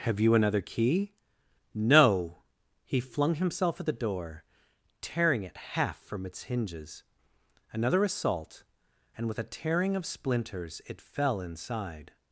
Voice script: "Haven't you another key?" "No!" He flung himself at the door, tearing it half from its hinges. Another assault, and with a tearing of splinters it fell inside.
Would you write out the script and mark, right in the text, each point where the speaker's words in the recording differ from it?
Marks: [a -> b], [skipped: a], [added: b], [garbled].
["Haven't -> Have] you another key?" "No!" He flung himself at the door, tearing it half from its hinges. Another assault, and with a tearing of splinters it fell inside.